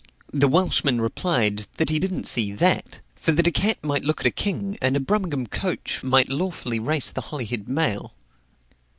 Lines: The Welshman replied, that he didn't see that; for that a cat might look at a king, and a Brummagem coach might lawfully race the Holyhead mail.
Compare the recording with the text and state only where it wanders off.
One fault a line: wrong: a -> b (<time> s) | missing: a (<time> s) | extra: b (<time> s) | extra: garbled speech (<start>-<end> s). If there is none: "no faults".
no faults